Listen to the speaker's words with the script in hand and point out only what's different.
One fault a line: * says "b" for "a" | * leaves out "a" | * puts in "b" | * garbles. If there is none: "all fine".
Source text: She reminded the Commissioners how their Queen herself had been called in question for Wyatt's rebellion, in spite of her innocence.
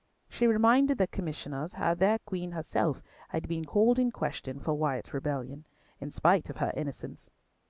all fine